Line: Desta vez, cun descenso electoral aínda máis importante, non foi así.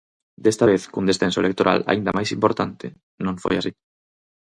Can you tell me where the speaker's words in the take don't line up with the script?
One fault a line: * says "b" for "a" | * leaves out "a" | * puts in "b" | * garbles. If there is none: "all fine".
all fine